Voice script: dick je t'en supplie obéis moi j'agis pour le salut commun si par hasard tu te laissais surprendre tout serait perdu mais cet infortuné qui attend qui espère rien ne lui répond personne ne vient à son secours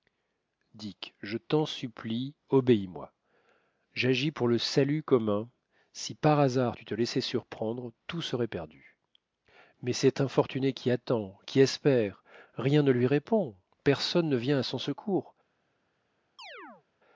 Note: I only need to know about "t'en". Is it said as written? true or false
true